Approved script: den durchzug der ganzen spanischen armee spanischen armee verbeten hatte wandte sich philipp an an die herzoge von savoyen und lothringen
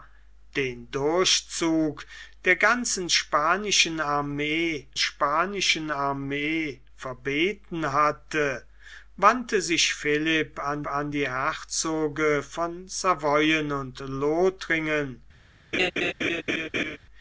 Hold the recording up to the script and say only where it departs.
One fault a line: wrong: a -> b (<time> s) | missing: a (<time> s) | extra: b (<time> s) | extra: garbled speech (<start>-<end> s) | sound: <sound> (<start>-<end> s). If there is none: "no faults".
sound: laugh (15.7-17.0 s)